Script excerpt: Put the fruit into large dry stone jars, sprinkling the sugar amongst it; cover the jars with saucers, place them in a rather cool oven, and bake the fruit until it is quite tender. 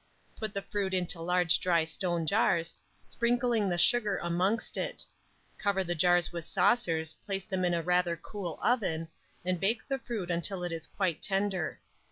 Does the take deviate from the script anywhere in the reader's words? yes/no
no